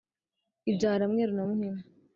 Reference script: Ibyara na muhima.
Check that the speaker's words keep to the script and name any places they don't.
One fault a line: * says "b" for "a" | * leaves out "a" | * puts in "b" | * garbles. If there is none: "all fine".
* puts in "mweru"